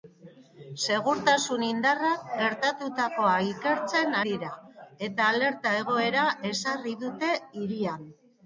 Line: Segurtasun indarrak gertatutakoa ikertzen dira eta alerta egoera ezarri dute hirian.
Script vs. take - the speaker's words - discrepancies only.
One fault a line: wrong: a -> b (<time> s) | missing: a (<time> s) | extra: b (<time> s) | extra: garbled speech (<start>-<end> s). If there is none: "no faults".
no faults